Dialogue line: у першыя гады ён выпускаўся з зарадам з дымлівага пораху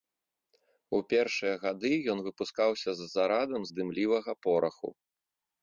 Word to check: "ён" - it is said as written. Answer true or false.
true